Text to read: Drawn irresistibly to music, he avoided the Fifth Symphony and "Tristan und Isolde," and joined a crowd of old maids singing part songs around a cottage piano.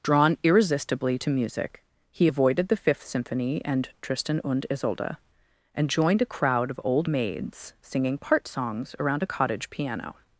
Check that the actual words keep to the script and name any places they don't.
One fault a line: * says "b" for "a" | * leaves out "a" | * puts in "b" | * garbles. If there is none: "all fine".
all fine